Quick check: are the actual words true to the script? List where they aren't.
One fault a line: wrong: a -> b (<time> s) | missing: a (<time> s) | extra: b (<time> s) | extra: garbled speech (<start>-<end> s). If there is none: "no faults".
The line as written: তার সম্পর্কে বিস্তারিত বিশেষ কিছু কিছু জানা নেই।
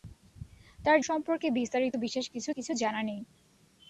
no faults